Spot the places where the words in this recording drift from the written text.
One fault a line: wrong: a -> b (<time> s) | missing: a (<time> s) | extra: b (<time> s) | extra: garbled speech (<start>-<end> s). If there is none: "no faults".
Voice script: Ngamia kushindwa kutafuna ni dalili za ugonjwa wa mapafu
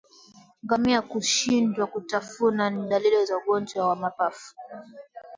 no faults